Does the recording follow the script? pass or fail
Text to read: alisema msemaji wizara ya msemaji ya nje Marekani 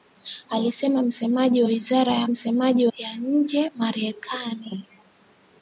pass